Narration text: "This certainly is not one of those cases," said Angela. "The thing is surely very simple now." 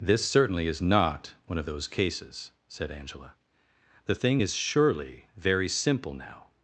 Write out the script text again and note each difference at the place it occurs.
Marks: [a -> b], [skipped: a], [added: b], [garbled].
"This certainly is not one of those cases," said Angela. "The thing is surely very simple now."